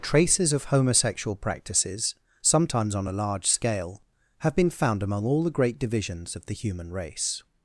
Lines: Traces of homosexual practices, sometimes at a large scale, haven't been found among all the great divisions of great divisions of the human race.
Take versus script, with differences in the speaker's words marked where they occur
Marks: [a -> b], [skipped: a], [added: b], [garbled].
Traces of homosexual practices, sometimes [at -> on] a large scale, [haven't -> have] been found among all the great divisions of [skipped: great divisions of] the human race.